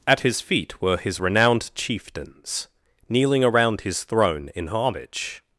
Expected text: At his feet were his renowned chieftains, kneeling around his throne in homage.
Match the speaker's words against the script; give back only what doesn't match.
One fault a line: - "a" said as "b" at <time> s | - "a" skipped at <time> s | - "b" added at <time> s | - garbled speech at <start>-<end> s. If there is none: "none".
none